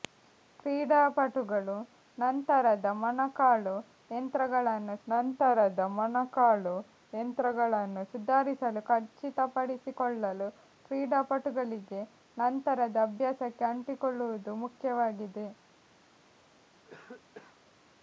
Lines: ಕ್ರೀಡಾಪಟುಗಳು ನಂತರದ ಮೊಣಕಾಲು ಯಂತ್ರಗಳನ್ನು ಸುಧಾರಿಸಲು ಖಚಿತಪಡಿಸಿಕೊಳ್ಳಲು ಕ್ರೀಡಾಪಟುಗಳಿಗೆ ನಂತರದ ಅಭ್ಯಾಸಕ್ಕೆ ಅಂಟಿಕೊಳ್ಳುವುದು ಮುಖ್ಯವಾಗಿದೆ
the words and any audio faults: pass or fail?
fail